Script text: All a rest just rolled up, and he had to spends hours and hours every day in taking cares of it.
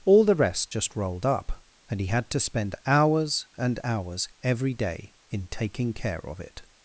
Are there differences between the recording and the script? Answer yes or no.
yes